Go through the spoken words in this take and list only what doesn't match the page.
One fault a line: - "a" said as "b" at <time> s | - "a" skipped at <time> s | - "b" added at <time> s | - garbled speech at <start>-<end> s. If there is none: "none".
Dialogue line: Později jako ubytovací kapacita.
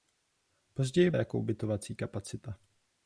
none